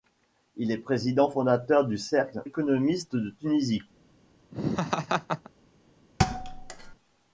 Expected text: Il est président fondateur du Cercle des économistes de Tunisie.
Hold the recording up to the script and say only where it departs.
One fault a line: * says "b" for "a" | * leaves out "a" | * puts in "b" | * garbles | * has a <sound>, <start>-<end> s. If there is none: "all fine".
* leaves out "des"
* has a laugh, 4.5-5.5 s
* has a thud, 6.2-7.0 s